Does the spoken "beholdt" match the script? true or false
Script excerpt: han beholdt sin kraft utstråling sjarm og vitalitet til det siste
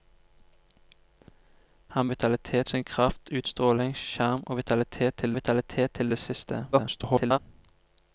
false